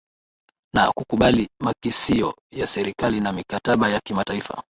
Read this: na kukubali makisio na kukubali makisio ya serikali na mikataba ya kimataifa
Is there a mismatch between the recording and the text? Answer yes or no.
yes